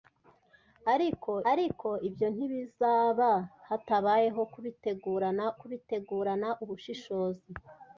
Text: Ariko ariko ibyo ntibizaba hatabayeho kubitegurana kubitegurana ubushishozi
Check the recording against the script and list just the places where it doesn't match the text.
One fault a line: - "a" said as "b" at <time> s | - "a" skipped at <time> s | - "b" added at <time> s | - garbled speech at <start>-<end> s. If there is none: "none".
none